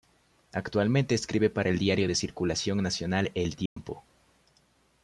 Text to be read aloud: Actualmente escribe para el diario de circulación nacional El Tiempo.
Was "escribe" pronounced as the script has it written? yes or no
yes